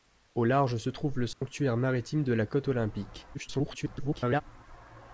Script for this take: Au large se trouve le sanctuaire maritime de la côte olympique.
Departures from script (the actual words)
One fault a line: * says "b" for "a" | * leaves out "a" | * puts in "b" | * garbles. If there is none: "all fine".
* garbles